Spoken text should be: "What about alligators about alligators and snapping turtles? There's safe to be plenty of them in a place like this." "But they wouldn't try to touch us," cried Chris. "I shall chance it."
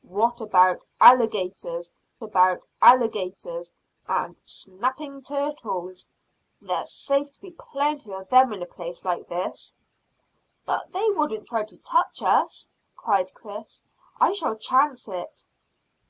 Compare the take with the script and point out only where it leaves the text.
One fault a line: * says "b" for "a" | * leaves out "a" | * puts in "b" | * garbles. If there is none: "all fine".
all fine